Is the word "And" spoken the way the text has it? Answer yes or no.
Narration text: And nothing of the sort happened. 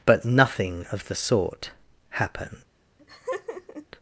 no